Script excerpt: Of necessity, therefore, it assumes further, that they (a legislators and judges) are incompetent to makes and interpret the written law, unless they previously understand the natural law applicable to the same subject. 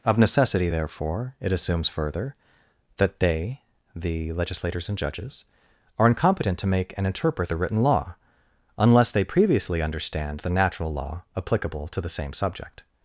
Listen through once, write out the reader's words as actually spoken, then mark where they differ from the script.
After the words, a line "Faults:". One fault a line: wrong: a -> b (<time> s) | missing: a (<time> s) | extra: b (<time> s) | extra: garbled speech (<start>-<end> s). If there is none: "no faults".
Of necessity, therefore, it assumes further, that they (the legislators and judges) are incompetent to make and interpret the written law, unless they previously understand the natural law applicable to the same subject.
Faults:
wrong: a -> the (3.9 s)
wrong: makes -> make (6.7 s)